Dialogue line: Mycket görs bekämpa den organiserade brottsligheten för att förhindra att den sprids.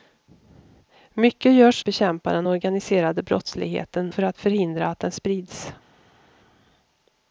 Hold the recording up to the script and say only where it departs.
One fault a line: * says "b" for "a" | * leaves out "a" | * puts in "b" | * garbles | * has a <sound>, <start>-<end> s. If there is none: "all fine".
all fine